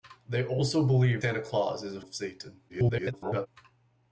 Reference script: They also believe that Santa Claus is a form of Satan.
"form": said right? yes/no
no